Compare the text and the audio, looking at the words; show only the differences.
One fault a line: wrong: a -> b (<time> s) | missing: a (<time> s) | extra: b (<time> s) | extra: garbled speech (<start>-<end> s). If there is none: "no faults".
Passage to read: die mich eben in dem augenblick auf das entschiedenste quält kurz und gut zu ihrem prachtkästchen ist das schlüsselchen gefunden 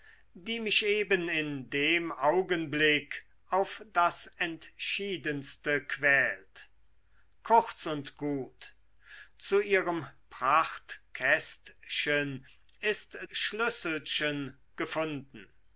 missing: das (13.2 s)